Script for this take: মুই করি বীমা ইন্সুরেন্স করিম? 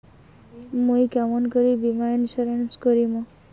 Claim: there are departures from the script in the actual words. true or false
true